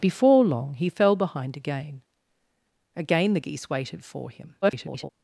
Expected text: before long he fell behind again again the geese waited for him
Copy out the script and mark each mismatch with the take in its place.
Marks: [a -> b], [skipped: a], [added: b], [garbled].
before long he fell behind again again the geese waited for him [garbled]